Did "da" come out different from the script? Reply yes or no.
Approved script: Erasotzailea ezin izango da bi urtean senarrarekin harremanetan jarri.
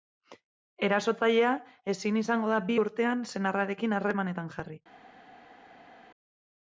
no